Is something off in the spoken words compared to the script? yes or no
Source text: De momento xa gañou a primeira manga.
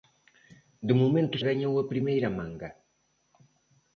yes